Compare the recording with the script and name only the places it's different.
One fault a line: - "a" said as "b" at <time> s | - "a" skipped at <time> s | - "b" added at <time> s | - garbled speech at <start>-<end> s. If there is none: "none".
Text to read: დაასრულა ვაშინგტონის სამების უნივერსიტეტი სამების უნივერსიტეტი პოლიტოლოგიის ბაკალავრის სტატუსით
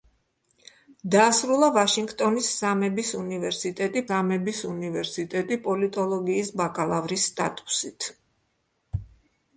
none